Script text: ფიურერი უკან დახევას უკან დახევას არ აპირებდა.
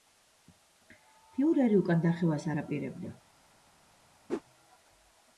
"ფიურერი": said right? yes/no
yes